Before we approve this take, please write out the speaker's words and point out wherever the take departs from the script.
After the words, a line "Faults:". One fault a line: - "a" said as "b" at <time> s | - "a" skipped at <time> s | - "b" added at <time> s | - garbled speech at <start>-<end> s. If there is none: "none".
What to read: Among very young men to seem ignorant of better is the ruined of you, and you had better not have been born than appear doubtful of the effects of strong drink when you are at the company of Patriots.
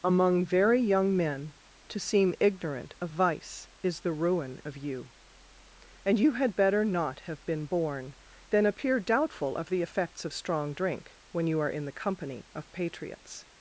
Among very young men to seem ignorant of vice is the ruin of you, and you had better not have been born than appear doubtful of the effects of strong drink when you are in the company of Patriots.
Faults:
- "better" said as "vice" at 3.1 s
- "ruined" said as "ruin" at 4.1 s
- "at" said as "in" at 11.7 s